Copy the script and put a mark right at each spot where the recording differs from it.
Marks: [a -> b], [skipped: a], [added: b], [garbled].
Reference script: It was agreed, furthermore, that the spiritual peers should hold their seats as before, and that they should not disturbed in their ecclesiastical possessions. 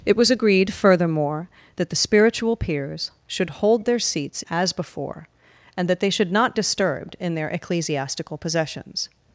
It was agreed, furthermore, that the spiritual peers should hold their seats as before, and that they should not disturbed in their ecclesiastical possessions.